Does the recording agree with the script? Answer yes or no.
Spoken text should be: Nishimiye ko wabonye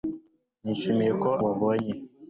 yes